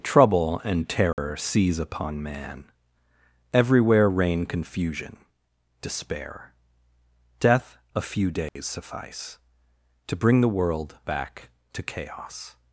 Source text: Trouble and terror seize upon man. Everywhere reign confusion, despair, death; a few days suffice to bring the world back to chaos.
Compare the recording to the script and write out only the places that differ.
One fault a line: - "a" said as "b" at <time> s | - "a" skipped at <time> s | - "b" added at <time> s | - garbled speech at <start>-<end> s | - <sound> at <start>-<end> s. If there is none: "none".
- dropout at 1.1-1.2 s
- dropout at 8.5-8.6 s